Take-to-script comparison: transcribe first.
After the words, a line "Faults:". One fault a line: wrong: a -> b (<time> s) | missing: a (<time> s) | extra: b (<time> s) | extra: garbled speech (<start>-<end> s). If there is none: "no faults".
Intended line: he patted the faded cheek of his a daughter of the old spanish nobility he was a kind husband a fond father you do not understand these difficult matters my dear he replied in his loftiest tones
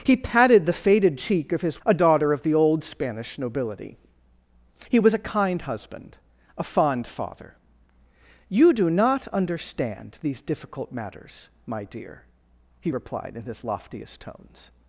he patted the faded cheek of his a daughter of the old spanish nobility he was a kind husband a fond father you do not understand these difficult matters my dear he replied in his loftiest tones
Faults:
no faults